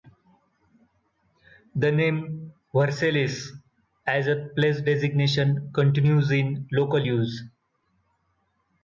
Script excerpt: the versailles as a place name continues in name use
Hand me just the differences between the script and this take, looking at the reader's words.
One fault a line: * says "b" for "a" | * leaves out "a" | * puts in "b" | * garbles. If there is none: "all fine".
* puts in "name"
* says "designation" for "name"
* says "local" for "name"